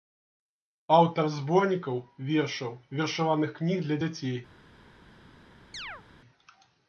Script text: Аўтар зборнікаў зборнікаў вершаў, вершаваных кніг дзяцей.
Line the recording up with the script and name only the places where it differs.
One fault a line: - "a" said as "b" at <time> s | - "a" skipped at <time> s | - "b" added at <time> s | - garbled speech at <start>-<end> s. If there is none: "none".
- "зборнікаў" skipped at 2.0 s
- "для" added at 3.9 s